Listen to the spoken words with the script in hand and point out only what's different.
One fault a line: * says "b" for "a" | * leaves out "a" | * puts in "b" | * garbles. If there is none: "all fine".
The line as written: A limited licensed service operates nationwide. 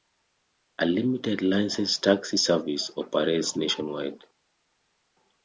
* puts in "taxi"